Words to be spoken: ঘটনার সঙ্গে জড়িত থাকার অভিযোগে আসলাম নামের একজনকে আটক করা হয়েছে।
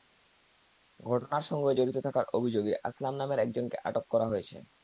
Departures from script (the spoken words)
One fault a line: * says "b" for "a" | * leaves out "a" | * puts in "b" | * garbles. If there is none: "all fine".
all fine